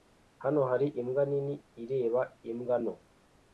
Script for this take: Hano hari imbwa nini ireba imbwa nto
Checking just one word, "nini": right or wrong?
right